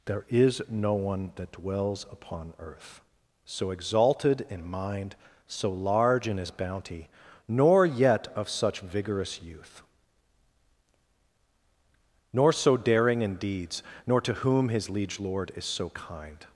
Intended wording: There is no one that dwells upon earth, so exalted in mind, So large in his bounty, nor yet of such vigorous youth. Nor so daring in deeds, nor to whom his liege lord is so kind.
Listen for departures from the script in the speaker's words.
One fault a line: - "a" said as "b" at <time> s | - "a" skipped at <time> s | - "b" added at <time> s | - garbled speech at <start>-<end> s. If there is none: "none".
none